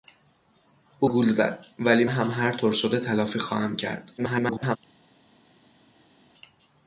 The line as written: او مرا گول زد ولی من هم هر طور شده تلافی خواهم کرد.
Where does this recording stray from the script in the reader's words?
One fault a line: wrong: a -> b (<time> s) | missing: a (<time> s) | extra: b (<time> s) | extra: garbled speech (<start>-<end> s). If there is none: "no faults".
missing: مرا (1.1 s)
missing: من (2.0 s)
extra: garbled speech (4.2-4.8 s)